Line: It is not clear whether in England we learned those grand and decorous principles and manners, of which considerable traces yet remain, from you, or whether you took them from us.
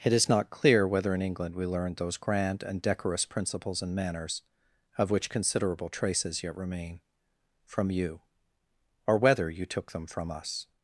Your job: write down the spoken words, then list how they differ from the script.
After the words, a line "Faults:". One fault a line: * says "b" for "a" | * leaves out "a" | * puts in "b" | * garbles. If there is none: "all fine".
It is not clear whether in England we learned those grand and decorous principles and manners, of which considerable traces yet remain, from you, or whether you took them from us.
Faults:
all fine